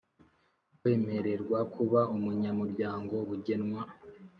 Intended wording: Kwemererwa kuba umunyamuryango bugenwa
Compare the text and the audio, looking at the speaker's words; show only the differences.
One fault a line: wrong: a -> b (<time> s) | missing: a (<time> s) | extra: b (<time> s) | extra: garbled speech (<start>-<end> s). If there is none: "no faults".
no faults